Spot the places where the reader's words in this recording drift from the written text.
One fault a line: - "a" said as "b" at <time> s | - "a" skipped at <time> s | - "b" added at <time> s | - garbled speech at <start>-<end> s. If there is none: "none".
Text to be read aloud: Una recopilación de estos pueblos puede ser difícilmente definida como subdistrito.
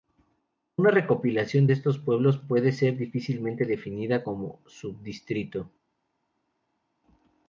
none